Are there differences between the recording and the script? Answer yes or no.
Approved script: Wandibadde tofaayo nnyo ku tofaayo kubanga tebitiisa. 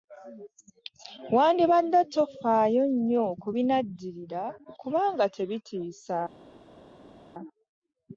yes